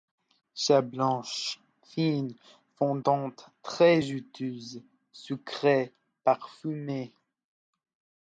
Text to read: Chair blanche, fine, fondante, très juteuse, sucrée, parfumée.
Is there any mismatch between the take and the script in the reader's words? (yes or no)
no